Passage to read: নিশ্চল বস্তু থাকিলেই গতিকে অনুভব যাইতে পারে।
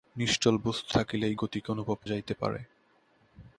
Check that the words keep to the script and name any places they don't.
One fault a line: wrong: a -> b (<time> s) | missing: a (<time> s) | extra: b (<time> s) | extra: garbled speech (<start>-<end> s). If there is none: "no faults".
no faults